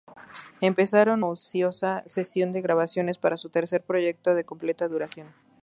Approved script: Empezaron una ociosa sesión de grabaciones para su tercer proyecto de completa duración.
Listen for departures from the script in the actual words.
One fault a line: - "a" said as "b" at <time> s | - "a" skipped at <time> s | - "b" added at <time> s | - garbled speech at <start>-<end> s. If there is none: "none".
- "una" skipped at 1.2 s